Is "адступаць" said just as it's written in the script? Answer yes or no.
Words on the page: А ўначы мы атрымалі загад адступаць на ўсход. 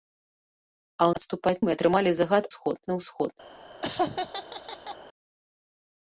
no